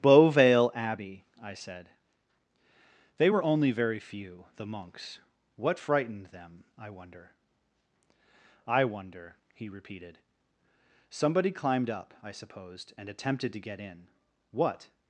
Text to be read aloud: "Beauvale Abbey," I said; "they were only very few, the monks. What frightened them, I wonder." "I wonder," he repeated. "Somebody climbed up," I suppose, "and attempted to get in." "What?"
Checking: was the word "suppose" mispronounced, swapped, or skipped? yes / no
yes